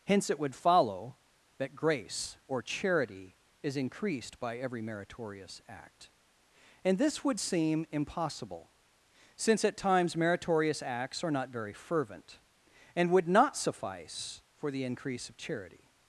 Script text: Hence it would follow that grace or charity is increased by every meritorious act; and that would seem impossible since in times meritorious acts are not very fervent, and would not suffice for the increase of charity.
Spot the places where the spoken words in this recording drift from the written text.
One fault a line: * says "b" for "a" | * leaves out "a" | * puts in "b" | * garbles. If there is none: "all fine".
* says "this" for "that"
* says "at" for "in"